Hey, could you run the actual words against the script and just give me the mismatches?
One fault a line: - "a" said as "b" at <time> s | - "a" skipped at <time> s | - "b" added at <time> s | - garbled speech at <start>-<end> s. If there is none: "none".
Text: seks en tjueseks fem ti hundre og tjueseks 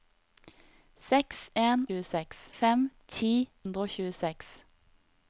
none